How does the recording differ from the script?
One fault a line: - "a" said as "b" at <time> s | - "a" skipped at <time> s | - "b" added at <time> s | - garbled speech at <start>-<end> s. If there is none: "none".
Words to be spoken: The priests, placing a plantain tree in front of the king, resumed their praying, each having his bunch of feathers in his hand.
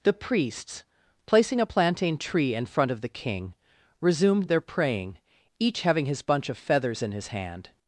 none